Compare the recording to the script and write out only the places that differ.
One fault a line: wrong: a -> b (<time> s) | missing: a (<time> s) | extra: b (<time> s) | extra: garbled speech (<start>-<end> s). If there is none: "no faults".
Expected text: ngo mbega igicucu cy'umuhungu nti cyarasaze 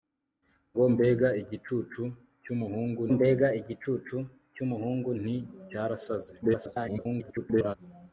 extra: mbega igicucu cy'umuhungu (3.1 s)
extra: garbled speech (6.4-7.8 s)